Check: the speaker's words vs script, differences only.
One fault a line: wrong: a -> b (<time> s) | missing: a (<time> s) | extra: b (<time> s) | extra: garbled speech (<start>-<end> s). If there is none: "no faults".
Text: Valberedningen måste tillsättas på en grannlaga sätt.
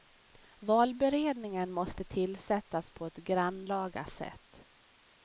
wrong: en -> ett (3.0 s)